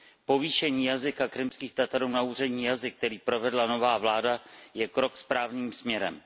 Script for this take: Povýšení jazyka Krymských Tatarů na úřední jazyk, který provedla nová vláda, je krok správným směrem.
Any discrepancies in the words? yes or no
no